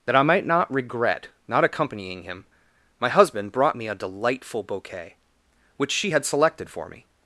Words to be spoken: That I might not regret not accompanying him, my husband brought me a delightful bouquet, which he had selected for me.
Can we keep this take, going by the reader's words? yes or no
no